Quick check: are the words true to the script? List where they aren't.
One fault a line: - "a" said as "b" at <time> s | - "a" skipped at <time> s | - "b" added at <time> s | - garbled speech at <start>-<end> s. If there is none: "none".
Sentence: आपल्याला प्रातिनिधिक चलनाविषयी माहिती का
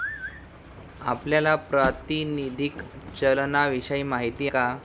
none